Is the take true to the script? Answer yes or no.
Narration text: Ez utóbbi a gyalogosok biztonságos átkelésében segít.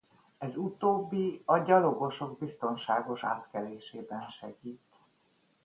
yes